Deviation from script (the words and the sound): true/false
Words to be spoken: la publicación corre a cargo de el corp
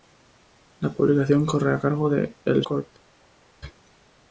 false